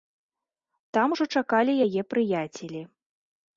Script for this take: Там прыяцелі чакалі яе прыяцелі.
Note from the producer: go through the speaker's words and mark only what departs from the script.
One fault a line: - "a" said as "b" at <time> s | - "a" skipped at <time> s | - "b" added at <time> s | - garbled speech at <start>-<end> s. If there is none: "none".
- "прыяцелі" said as "ужо" at 1.1 s